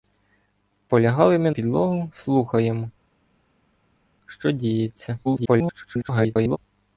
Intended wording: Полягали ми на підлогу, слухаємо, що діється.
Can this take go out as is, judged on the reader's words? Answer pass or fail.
fail